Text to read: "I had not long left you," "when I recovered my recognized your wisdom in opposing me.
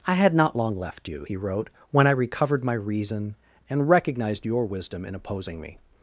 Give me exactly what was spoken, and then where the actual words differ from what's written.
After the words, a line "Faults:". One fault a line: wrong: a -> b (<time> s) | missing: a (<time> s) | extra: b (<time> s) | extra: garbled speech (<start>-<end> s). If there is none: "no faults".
"I had not long left you," he wrote, "when I recovered my reason, and recognized your wisdom in opposing me.
Faults:
extra: he wrote (1.2 s)
extra: reason and (2.7 s)